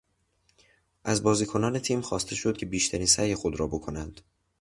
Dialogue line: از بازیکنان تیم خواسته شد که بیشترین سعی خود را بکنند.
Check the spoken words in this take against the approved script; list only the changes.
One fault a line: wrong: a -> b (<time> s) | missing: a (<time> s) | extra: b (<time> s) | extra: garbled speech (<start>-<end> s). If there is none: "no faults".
no faults